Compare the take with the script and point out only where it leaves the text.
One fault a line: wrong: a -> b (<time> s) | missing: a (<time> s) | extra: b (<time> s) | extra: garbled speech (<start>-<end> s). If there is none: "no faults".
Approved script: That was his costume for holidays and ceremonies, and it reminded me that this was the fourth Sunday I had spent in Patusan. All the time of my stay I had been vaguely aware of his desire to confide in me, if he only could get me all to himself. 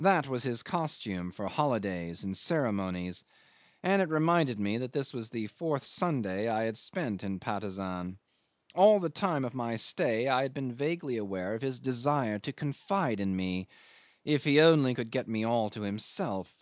no faults